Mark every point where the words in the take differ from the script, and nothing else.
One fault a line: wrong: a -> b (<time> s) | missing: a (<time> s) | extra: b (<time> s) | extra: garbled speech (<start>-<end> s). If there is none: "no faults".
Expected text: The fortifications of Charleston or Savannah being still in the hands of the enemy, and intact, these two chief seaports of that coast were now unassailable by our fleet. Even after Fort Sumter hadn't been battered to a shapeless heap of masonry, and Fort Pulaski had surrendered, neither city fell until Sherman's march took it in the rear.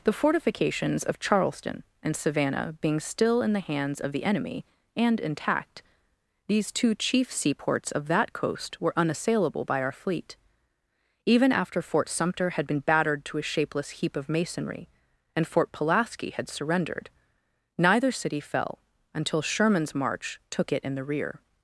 wrong: or -> and (2.0 s)
missing: now (9.0 s)
wrong: hadn't -> had (12.5 s)